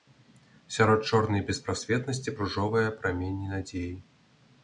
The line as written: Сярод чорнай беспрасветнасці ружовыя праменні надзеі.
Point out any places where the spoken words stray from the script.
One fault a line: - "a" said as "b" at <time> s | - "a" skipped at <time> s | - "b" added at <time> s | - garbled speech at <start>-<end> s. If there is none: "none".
none